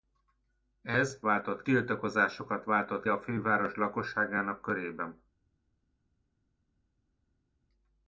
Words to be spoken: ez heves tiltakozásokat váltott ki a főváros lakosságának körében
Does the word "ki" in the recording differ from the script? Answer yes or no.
yes